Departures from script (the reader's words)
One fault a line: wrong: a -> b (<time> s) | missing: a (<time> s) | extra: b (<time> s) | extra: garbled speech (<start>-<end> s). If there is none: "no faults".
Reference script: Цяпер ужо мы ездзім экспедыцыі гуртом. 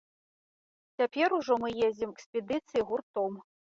no faults